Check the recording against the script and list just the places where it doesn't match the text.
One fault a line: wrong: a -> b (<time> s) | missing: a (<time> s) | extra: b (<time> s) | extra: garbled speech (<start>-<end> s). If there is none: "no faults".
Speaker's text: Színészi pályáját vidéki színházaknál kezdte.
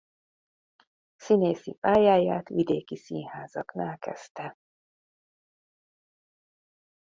no faults